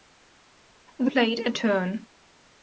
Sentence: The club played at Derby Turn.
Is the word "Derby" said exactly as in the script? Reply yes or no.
no